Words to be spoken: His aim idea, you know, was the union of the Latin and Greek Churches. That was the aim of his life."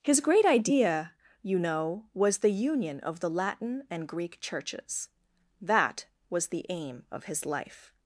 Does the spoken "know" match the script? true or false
true